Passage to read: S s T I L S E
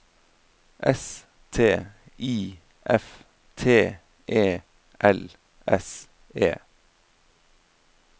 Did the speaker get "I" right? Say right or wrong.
wrong